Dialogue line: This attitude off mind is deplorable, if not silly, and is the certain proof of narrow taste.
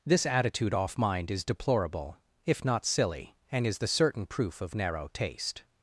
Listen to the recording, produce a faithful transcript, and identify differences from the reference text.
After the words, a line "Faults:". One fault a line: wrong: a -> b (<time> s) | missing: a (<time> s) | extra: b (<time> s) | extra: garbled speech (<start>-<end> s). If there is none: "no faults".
This attitude off mind is deplorable, if not silly, and is the certain proof of narrow taste.
Faults:
no faults